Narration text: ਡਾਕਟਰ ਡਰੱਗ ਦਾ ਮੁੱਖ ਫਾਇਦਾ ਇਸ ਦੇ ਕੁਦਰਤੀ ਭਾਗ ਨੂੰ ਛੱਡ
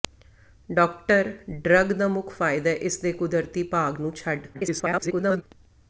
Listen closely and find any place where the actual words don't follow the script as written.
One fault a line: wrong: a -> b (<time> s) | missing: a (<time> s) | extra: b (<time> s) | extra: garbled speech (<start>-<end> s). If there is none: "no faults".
extra: garbled speech (4.5-5.4 s)